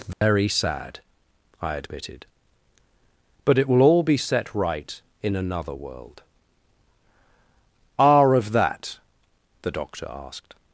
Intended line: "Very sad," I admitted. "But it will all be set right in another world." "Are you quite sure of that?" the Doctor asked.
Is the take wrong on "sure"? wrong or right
wrong